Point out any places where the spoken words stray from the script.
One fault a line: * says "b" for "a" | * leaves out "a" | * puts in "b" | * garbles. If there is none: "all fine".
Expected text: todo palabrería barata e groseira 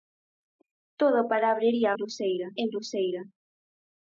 * says "groseira" for "barata"